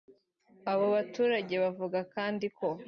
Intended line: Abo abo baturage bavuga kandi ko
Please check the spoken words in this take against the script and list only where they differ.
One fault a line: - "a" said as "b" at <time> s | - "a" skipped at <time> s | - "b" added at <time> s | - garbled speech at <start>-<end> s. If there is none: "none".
- "abo" skipped at 0.8 s